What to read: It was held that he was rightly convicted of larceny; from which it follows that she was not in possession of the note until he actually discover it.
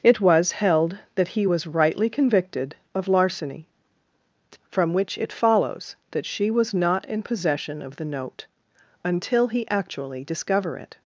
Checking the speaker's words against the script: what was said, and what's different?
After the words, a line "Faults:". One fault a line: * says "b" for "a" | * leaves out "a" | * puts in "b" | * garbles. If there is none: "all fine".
It was held that he was rightly convicted of larceny; from which it follows that she was not in possession of the note until he actually discover it.
Faults:
all fine